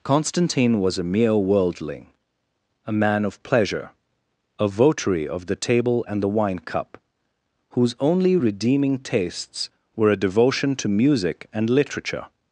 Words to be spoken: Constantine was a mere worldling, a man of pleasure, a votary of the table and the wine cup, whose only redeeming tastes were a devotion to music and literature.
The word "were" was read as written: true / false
true